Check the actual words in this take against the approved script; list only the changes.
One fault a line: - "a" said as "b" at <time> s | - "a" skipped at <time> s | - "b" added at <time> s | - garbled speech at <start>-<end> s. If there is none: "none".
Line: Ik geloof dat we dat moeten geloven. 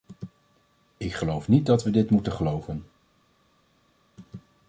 - "niet" added at 1.5 s
- "dat" said as "dit" at 1.9 s